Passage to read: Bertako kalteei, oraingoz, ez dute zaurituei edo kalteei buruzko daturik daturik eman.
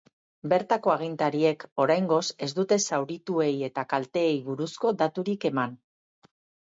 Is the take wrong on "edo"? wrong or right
wrong